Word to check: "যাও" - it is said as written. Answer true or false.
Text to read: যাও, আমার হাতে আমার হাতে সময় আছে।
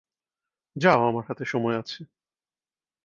true